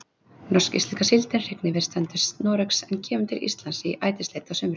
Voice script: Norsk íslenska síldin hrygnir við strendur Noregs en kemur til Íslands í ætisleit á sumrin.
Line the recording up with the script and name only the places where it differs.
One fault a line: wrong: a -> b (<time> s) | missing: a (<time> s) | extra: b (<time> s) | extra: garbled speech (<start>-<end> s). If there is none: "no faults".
no faults